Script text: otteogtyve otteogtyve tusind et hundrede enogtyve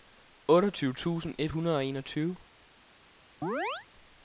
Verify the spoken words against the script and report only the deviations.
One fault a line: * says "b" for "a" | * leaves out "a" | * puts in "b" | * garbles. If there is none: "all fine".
* leaves out "otteogtyve"
* puts in "og"